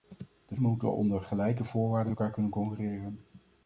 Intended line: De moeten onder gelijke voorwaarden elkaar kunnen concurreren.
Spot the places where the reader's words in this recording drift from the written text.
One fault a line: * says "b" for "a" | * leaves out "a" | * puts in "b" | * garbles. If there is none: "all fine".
all fine